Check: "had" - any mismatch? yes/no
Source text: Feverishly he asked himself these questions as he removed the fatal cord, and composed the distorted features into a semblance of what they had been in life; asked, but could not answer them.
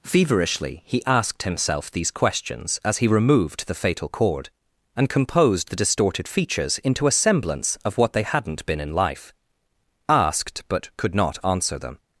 yes